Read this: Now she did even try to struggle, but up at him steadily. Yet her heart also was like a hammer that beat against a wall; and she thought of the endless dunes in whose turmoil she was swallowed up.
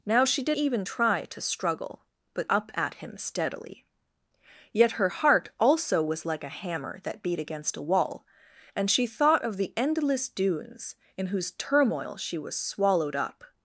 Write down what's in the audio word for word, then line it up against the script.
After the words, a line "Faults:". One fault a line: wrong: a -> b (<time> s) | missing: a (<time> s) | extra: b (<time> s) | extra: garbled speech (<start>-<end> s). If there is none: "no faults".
Now she did even try to struggle, but up at him steadily. Yet her heart also was like a hammer that beat against a wall; and she thought of the endless dunes in whose turmoil she was swallowed up.
Faults:
no faults